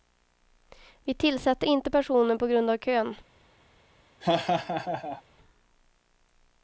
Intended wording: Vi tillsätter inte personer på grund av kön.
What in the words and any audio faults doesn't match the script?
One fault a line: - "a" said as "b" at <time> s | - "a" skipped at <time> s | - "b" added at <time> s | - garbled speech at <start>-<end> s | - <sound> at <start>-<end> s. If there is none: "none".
- laugh at 4.2-5.2 s